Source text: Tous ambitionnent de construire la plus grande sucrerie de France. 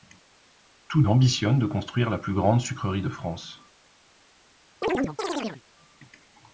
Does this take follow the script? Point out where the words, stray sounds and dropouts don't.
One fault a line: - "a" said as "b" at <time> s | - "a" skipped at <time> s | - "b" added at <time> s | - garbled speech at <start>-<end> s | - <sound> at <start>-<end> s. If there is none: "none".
- chirp at 4.8-5.6 s